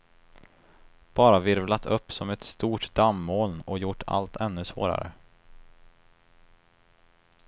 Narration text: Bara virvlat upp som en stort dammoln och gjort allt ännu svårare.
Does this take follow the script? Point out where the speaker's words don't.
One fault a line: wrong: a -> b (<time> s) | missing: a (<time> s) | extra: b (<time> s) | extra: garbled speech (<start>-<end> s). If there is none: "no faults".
wrong: en -> ett (2.3 s)